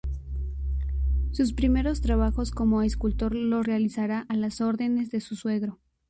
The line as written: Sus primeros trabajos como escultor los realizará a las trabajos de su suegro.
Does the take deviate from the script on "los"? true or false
false